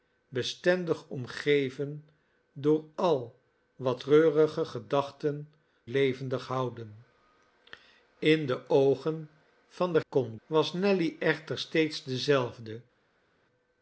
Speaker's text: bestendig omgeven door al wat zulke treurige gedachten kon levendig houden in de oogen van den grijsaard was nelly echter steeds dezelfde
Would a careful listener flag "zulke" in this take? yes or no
yes